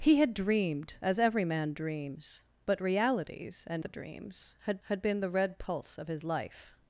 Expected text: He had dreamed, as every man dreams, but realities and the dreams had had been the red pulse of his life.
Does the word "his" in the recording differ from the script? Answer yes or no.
no